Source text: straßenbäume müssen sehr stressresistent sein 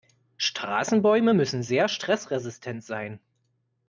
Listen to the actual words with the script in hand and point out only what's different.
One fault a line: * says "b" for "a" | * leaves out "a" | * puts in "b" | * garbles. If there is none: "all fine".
all fine